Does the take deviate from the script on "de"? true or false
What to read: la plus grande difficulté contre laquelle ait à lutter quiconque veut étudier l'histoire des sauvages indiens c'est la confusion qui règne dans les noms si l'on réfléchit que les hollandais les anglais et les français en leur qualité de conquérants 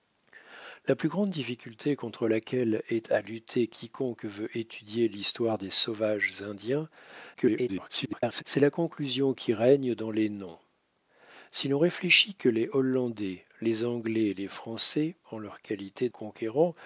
true